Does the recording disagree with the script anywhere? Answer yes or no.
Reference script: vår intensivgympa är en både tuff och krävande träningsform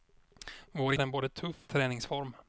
yes